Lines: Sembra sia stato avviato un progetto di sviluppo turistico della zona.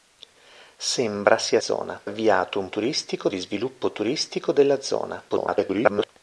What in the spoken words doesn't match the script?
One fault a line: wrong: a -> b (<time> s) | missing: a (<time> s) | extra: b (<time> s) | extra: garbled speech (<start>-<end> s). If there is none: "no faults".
wrong: stato -> zona (1.6 s)
wrong: progetto -> turistico (2.7 s)
extra: garbled speech (5.3-6.1 s)